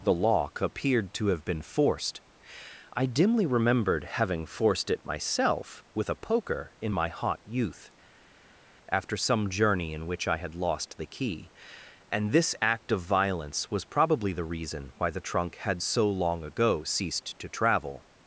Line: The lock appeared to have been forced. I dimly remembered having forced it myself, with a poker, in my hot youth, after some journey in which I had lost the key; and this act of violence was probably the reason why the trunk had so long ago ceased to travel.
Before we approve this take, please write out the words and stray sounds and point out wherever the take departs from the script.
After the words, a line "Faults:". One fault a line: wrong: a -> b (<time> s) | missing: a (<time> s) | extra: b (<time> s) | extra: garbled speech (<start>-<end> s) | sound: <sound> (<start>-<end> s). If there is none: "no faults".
The lock appeared to have been forced. I dimly remembered having forced it myself, with a poker, in my hot youth, after some journey in which I had lost the key; and this act of violence was probably the reason why the trunk had so long ago ceased to travel.
Faults:
no faults